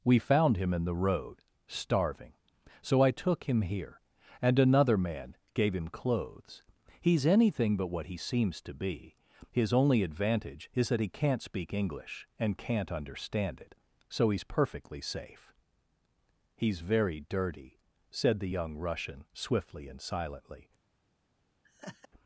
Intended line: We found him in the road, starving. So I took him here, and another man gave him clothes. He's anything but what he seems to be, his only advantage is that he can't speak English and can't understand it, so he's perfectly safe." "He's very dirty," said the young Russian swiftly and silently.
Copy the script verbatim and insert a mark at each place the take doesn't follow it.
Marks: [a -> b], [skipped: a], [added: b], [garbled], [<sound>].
We found him in the road, starving. So I took him here, and another man gave him clothes. He's anything but what he seems to be, his only advantage is that he can't speak English and can't understand it, so he's perfectly safe." "He's very dirty," said the young Russian swiftly and silently. [laugh]